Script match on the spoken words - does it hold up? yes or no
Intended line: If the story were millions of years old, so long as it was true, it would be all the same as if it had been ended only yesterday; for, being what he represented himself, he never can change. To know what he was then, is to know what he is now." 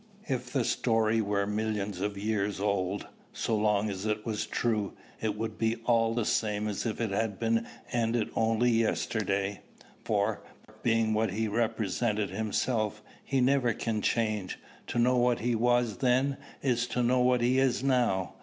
yes